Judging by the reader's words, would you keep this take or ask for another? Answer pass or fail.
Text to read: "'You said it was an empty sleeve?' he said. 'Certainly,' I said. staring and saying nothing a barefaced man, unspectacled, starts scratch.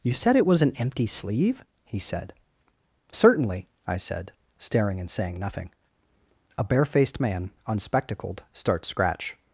pass